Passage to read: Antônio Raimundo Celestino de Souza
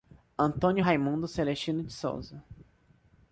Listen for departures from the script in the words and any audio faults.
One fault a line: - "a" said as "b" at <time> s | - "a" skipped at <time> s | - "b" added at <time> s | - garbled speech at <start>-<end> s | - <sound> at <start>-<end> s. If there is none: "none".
none